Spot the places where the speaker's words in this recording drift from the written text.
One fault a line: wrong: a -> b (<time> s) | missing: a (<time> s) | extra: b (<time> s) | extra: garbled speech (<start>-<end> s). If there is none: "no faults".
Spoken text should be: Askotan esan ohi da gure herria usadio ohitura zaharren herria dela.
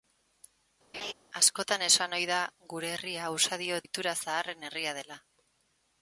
no faults